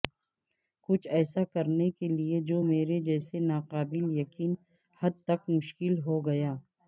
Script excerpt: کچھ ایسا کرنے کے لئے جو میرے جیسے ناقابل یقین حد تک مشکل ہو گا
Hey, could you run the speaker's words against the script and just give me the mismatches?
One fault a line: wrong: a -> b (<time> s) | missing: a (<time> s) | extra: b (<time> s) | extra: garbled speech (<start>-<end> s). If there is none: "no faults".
no faults